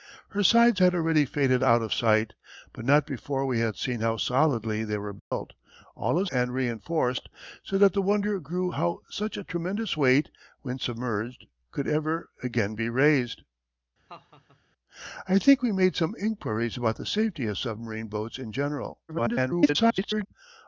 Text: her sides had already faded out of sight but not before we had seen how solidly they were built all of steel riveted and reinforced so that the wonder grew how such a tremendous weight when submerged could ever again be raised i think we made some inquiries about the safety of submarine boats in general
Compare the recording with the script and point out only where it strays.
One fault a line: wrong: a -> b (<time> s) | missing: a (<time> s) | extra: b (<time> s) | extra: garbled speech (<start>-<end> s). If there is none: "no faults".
missing: steel riveted (6.3 s)
extra: garbled speech (19.1-20.3 s)